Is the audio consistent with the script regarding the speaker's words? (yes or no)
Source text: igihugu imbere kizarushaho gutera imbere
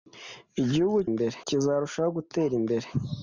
yes